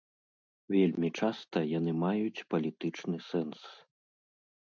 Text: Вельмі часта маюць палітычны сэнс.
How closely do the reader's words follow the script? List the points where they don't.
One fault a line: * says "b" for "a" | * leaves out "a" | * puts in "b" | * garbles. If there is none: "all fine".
* puts in "яны"